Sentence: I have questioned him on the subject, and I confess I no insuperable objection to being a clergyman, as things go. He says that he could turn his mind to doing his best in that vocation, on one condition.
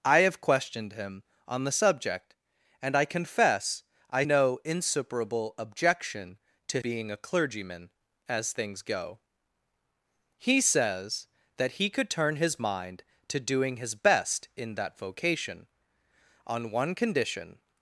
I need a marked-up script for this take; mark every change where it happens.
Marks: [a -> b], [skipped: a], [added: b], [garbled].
I have questioned him on the subject, and I confess I no insuperable objection to being a clergyman, as things go. He says that he could turn his mind to doing his best in that vocation, on one condition.